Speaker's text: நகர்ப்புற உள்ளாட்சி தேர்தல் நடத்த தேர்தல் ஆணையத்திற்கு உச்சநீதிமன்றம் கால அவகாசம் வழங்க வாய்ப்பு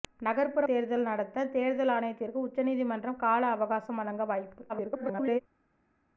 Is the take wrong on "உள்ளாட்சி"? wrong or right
wrong